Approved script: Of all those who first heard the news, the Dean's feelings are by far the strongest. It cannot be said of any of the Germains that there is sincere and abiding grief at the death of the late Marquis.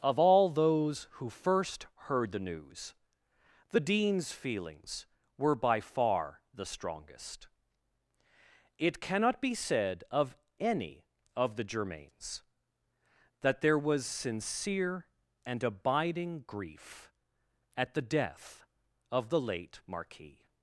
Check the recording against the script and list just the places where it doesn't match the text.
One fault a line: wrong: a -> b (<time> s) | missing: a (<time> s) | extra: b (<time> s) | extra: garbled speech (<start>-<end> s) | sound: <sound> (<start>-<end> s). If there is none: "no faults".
wrong: are -> were (5.4 s)
wrong: is -> was (13.8 s)